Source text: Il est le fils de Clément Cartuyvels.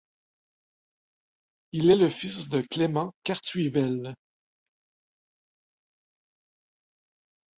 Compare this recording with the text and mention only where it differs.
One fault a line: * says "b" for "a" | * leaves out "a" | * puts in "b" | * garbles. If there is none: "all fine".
all fine